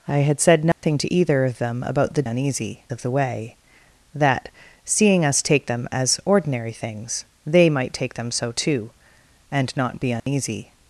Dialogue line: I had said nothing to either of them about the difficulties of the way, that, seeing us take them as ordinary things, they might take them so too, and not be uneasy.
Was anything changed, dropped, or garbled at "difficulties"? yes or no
yes